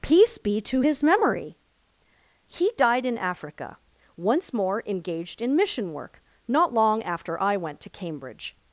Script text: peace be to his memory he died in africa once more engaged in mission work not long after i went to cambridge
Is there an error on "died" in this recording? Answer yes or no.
no